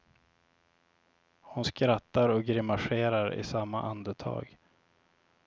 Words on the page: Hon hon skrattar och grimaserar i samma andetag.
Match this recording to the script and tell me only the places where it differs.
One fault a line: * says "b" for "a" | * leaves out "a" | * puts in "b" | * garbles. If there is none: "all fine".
* leaves out "hon"